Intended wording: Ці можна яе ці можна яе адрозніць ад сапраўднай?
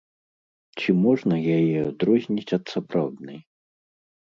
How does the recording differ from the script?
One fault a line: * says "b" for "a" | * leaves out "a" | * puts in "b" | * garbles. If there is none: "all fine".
* leaves out "ці можна яе"